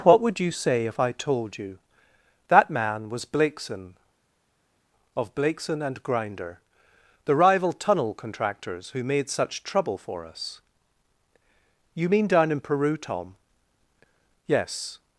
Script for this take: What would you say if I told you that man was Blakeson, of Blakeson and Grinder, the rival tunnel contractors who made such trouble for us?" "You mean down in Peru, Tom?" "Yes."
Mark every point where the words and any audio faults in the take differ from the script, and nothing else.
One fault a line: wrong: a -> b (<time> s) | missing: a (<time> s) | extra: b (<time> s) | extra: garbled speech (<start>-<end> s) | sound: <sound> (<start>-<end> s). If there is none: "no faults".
no faults